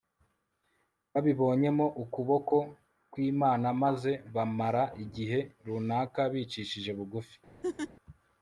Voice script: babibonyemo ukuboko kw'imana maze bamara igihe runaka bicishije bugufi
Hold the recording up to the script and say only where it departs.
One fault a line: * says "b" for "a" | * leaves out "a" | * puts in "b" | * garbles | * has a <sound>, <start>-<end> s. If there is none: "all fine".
* has a laugh, 7.6-7.9 s